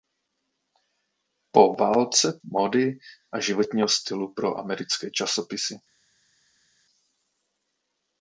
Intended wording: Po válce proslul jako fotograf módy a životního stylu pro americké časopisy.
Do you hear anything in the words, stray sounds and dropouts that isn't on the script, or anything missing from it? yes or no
yes